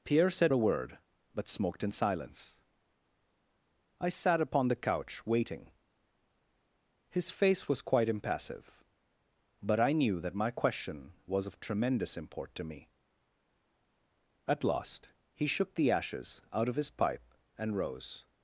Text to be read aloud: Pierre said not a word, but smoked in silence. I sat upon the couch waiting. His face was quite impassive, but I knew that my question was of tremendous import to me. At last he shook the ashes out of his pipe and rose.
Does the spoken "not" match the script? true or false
false